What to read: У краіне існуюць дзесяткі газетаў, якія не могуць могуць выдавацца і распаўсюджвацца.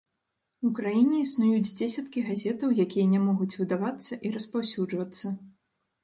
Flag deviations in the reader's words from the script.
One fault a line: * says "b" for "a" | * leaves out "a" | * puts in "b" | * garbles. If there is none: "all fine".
* leaves out "могуць"